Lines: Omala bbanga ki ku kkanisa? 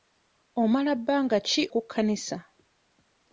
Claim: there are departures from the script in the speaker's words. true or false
false